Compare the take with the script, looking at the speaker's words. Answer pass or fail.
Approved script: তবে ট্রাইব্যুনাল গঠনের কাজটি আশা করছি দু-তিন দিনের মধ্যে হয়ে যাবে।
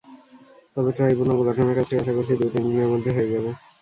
pass